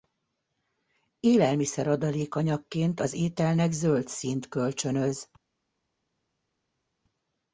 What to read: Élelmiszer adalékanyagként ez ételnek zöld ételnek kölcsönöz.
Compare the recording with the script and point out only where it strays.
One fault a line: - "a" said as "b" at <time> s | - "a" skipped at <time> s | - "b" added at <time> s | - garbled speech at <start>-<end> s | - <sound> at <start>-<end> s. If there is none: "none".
- "ez" said as "az" at 3.0 s
- "ételnek" said as "színt" at 4.1 s